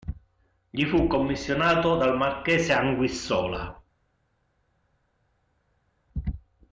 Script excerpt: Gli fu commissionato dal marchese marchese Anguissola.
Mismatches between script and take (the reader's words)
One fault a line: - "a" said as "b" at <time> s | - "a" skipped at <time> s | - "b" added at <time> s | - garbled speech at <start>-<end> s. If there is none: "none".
- "marchese" skipped at 2.7 s